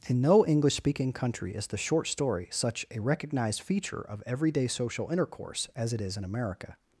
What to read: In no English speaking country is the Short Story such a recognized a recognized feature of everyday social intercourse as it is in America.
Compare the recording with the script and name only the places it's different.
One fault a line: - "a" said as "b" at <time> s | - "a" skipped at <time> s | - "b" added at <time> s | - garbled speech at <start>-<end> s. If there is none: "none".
- "a recognized" skipped at 3.6 s